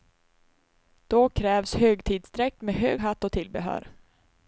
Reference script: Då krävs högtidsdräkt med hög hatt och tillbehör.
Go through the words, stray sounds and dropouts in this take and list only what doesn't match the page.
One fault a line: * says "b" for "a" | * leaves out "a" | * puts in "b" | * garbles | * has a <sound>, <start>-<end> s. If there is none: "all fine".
all fine